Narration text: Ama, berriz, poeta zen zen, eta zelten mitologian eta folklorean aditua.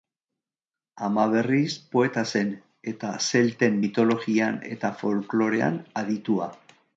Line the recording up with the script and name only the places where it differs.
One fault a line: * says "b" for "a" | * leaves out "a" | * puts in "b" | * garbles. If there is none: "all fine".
* leaves out "zen"